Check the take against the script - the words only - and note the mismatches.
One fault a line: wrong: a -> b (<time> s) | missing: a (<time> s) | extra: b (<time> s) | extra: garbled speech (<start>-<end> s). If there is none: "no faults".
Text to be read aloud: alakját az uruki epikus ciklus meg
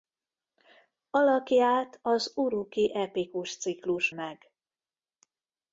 no faults